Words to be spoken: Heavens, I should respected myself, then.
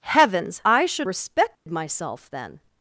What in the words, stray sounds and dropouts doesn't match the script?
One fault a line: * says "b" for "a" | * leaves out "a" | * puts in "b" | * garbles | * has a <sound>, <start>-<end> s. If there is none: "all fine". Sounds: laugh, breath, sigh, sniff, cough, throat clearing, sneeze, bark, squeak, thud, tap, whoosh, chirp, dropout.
* has a dropout, 1.6-1.7 s